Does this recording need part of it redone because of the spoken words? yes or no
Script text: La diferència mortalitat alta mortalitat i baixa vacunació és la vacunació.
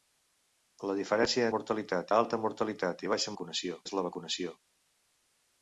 no